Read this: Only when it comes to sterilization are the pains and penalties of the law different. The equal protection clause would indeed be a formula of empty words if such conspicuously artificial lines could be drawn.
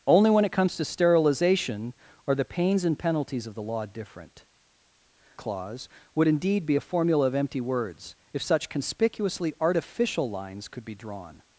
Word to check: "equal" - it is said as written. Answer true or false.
false